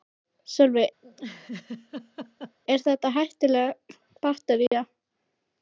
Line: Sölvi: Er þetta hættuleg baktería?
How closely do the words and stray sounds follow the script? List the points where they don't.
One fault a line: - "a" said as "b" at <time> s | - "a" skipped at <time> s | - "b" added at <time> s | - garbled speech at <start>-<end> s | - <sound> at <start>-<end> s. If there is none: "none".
- laugh at 1.0-2.6 s
- dropout at 4.7-4.7 s